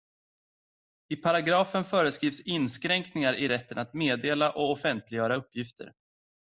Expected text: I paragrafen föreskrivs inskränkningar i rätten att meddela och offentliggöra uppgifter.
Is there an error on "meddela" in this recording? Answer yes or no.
no